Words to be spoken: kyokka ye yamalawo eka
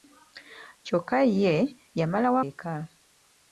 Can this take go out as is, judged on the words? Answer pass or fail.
pass